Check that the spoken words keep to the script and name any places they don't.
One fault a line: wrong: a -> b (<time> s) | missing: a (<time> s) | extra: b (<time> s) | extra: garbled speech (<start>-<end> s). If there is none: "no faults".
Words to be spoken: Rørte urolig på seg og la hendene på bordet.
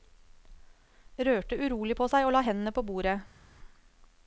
no faults